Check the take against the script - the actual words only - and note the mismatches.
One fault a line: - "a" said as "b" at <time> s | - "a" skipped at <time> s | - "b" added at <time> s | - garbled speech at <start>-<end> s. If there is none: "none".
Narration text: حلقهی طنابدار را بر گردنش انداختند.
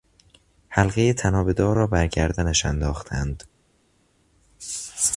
none